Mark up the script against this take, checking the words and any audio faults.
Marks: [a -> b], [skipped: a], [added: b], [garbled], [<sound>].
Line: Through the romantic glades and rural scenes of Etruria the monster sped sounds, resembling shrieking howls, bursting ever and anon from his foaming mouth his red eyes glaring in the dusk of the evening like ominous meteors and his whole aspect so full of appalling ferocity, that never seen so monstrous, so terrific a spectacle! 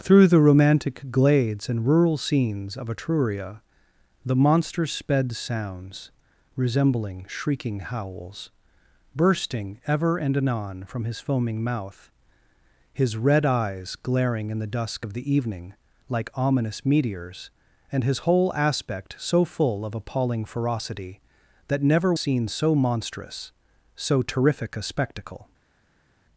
Through the romantic glades and rural scenes of Etruria the monster sped sounds, resembling shrieking howls, bursting ever and anon from his foaming mouth his red eyes glaring in the dusk of the evening like ominous meteors and his whole aspect so full of appalling ferocity, that never seen so monstrous, so terrific a spectacle!